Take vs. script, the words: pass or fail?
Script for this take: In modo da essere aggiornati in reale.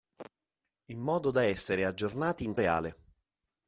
pass